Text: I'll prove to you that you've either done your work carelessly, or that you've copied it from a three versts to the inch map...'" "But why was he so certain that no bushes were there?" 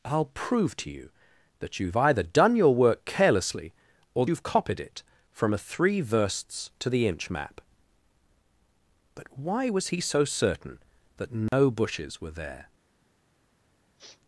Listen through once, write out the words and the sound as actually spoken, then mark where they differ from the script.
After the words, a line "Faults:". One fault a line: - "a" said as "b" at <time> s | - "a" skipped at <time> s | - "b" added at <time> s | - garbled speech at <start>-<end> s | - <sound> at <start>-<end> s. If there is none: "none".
I'll prove to you that you've either done your work carelessly, or you've copied it from a three versts to the inch map...'" "But why was he so certain that no bushes were there?"
Faults:
- "that" skipped at 4.2 s
- dropout at 11.5-11.5 s
- sniff at 14.0-14.2 s